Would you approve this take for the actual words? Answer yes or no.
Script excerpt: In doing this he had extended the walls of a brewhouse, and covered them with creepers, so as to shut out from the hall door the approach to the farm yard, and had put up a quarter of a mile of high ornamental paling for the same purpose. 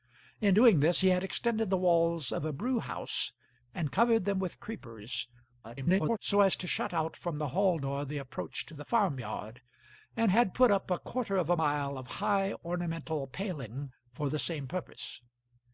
no